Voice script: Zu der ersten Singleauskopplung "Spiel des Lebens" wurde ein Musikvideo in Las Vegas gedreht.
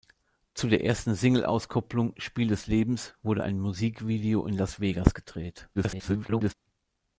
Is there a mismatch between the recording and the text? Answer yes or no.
yes